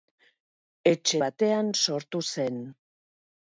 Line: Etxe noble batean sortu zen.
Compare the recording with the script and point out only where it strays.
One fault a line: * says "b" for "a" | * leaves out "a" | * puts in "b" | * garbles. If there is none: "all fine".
* leaves out "noble"